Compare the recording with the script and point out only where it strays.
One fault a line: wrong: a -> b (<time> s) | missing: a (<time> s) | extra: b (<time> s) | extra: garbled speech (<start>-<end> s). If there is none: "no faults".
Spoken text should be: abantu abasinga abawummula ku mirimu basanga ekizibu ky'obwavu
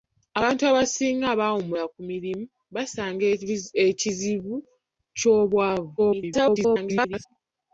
extra: garbled speech (6.0-7.3 s)